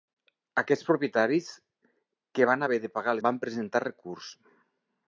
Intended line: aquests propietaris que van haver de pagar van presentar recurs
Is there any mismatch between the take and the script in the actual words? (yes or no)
no